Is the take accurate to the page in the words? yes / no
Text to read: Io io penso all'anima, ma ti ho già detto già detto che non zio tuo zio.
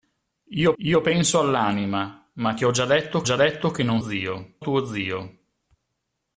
yes